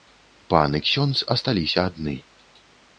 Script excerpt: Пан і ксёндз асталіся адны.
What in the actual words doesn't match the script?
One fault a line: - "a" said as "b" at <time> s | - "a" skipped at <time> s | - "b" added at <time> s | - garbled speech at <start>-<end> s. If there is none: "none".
none